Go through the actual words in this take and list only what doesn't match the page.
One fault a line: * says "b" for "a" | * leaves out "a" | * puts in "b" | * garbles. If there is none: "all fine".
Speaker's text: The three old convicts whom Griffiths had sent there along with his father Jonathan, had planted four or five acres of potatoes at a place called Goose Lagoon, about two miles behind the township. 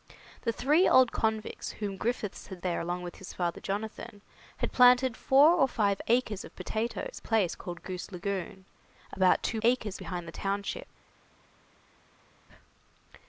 * leaves out "sent"
* leaves out "at"
* says "acres" for "miles"